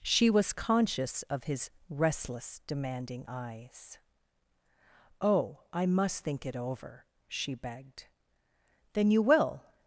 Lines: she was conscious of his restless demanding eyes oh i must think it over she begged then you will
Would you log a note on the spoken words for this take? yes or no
no